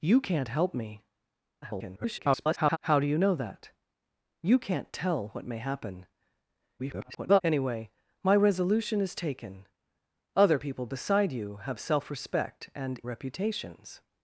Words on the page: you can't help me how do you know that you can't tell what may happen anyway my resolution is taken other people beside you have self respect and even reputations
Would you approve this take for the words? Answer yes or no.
no